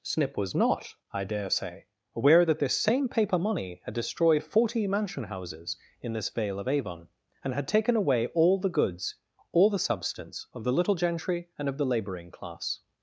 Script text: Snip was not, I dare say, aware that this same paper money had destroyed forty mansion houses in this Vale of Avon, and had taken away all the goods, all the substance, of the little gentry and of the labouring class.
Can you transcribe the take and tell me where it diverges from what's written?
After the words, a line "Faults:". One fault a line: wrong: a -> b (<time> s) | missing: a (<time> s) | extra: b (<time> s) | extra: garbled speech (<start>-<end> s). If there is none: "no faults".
Snip was not, I dare say, aware that this same paper money had destroyed forty mansion houses in this Vale of Avon, and had taken away all the goods, all the substance, of the little gentry and of the labouring class.
Faults:
no faults